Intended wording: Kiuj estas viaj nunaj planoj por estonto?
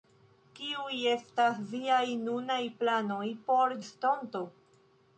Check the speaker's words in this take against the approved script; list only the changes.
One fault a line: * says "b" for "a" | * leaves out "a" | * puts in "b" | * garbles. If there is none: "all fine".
all fine